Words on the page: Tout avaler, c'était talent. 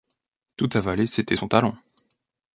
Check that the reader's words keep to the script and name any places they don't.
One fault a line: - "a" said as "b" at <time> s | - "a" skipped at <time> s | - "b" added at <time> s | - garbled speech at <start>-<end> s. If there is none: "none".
- "son" added at 1.3 s